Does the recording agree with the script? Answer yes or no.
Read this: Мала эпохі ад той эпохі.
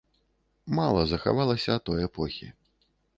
no